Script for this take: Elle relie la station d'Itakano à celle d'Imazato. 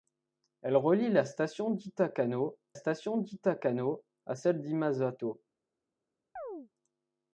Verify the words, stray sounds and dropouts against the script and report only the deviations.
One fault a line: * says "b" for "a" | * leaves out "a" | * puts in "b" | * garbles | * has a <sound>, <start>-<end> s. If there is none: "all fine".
* puts in "station d'Itakano"
* has a chirp, 6.4-6.7 s